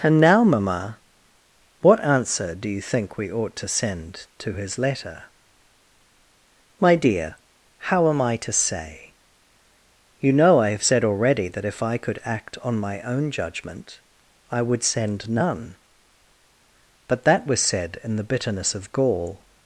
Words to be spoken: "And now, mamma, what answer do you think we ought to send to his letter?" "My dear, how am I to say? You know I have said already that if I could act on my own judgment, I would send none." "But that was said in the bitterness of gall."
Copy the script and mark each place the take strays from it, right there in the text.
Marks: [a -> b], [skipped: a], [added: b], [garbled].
"And now, mamma, what answer do you think we ought to send to his letter?" "My dear, how am I to say? You know I have said already that if I could act on my own judgment, I would send none." "But that was said in the bitterness of gall."